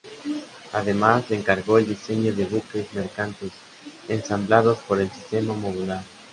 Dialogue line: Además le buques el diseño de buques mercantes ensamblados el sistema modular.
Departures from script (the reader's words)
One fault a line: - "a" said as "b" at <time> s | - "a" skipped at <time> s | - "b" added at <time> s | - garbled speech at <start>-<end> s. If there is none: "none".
- "buques" said as "encargó" at 1.4 s
- "por" added at 4.9 s